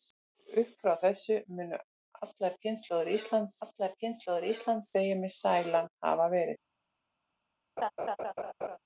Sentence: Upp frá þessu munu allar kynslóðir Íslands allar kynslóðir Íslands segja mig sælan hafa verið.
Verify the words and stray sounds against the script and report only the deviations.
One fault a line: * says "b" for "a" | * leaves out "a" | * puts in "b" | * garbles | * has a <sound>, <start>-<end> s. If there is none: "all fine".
* has a laugh, 7.8-8.8 s